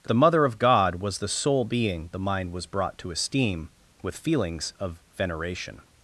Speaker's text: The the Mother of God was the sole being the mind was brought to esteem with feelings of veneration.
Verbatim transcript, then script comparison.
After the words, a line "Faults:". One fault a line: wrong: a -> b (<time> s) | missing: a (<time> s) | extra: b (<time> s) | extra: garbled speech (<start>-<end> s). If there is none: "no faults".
The the Mother of God was the sole being the mind was brought to esteem with feelings of veneration.
Faults:
no faults